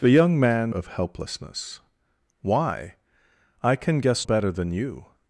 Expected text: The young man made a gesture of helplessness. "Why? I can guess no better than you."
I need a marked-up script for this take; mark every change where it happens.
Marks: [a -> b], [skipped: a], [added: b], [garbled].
The young man [skipped: made a gesture] of helplessness. "Why? I can guess [skipped: no] better than you."